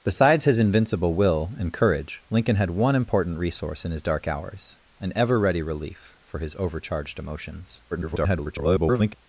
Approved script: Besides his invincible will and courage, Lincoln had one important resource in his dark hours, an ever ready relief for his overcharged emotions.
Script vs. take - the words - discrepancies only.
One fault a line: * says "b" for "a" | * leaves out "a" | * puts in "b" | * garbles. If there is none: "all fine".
* garbles